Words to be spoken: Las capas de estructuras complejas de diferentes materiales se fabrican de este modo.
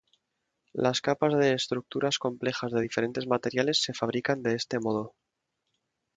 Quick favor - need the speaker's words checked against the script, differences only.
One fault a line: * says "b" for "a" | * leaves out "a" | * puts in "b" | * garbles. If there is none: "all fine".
all fine